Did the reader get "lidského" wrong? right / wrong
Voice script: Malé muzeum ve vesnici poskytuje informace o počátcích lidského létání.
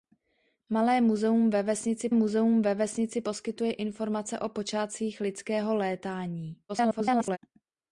right